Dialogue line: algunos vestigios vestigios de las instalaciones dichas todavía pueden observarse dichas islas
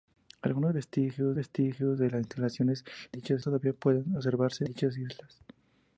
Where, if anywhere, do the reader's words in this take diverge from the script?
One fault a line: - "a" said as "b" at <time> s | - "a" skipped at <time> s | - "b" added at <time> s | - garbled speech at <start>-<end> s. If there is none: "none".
none